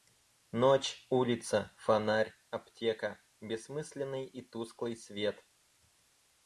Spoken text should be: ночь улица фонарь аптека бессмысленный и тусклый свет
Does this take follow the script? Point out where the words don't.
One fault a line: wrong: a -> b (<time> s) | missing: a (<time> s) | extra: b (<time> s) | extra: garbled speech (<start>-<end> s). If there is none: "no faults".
no faults